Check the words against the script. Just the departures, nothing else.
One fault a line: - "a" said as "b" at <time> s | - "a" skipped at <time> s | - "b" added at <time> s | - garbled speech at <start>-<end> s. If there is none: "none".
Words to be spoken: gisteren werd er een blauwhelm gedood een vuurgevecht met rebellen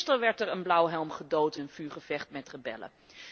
none